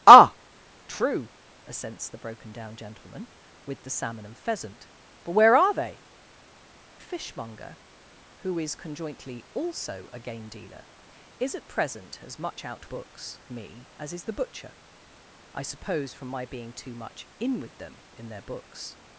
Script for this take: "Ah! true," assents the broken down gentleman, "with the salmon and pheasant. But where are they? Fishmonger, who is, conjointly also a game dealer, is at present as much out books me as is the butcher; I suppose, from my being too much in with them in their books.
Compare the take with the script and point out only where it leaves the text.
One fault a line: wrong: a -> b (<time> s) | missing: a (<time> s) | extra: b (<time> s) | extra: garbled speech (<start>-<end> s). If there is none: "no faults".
no faults